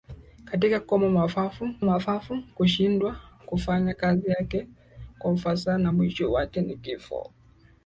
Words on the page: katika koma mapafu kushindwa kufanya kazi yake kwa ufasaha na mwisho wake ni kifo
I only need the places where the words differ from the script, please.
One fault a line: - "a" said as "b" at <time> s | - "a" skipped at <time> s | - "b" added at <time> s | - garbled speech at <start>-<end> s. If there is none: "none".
- "mapafu" added at 1.8 s